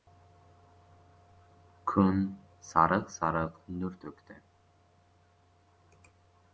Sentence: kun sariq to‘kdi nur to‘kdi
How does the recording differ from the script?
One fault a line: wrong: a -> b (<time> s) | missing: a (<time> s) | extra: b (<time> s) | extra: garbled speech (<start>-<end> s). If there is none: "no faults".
wrong: to‘kdi -> sariq (3.2 s)